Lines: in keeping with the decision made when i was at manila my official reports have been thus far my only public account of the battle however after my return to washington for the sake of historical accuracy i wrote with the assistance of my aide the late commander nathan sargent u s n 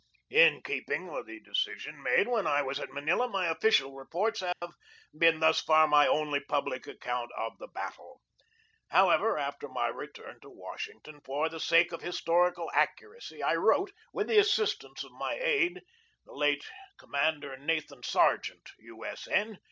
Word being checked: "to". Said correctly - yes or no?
yes